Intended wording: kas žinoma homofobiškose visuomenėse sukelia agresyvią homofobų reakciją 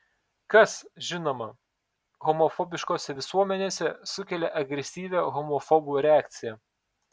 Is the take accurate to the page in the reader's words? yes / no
yes